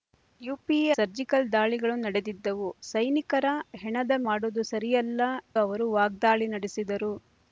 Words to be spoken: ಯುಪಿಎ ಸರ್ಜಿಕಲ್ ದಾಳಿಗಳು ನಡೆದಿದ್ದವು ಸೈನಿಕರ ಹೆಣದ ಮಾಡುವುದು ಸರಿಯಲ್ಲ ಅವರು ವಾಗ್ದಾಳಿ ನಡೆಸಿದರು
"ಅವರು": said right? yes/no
yes